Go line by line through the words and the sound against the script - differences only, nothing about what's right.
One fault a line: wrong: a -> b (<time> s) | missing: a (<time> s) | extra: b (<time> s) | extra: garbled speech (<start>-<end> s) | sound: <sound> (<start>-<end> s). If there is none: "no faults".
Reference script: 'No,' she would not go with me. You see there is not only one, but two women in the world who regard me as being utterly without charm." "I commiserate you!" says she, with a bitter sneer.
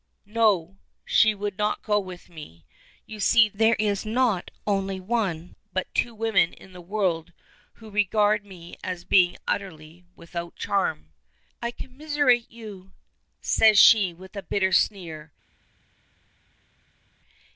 no faults